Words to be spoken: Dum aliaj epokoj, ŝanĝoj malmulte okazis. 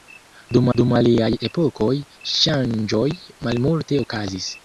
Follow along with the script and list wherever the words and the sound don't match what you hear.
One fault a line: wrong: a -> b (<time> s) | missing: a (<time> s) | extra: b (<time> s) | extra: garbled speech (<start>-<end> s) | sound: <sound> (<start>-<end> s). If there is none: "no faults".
extra: dum (0.8 s)